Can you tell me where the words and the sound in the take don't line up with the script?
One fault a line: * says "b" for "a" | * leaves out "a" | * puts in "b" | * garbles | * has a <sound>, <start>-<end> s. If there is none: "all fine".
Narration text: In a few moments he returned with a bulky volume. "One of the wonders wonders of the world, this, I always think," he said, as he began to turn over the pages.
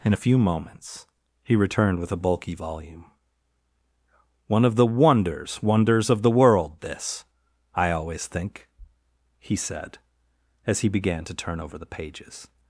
all fine